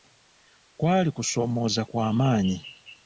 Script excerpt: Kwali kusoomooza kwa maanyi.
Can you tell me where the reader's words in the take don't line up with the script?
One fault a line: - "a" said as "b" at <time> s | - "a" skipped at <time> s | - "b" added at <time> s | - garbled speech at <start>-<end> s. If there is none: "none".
none